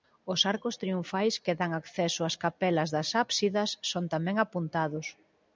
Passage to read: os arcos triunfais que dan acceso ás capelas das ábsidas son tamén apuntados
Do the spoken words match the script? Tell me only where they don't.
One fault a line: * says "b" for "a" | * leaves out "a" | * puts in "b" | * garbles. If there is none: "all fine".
all fine